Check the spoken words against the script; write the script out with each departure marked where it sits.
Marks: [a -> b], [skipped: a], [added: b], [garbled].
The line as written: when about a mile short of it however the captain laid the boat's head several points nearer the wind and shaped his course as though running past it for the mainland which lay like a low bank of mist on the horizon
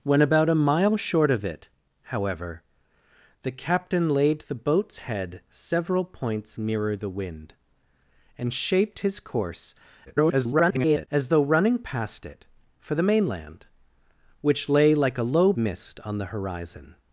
when about a mile short of it however the captain laid the boat's head several points nearer the wind and shaped his course [garbled] as though running past it for the mainland which lay like a low [skipped: bank of] mist on the horizon